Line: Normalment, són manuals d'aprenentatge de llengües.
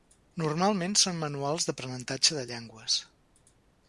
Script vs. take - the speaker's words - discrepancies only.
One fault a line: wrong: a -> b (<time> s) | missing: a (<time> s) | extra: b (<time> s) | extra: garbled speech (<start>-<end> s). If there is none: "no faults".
no faults